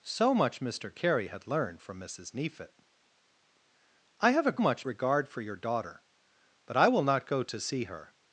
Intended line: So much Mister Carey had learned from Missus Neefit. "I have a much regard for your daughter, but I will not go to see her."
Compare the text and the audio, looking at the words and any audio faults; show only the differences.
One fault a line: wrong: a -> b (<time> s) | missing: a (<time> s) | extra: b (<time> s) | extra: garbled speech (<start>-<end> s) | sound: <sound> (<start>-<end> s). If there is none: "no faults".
no faults